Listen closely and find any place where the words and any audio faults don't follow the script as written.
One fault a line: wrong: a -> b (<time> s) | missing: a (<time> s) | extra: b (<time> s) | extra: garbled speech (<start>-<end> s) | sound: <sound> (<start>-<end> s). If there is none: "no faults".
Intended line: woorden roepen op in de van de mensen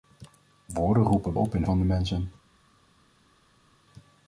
no faults